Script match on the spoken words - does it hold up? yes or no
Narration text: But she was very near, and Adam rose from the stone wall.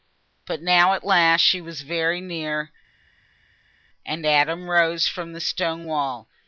no